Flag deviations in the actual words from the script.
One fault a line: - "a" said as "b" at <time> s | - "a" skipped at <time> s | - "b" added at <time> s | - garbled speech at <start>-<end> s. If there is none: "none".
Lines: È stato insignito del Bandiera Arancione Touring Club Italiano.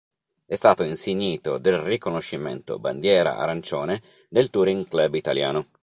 - "riconoscimento" added at 1.8 s
- "del" added at 4.3 s